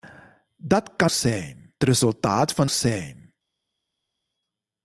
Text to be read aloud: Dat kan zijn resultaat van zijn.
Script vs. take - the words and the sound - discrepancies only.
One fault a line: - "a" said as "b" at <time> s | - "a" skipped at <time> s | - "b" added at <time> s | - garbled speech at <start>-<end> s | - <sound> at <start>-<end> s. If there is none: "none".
none